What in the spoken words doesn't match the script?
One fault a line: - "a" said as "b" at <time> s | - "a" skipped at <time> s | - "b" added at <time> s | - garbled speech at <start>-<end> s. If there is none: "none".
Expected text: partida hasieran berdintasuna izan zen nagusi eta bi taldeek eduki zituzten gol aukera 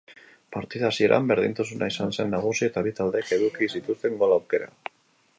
none